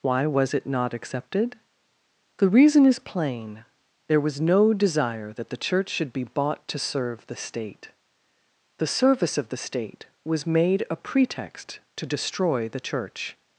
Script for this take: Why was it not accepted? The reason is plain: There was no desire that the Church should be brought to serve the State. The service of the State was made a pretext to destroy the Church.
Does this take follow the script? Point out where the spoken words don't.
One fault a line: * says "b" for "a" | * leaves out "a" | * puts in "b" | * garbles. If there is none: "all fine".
* says "bought" for "brought"